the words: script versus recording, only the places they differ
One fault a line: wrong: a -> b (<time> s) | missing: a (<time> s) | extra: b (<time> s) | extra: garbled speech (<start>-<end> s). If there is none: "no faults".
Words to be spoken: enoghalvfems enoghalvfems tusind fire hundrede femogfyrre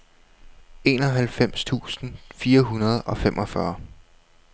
missing: enoghalvfems (1.6 s)
extra: og (3.0 s)